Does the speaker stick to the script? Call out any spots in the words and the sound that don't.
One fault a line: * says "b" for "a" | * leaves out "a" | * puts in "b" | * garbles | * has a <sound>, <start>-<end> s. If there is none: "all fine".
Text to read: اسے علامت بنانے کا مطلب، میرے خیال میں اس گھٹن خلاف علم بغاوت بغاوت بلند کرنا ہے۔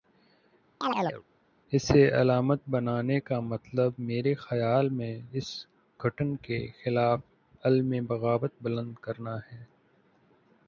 * has a chirp, 0.8-1.2 s
* puts in "کے"
* leaves out "بغاوت"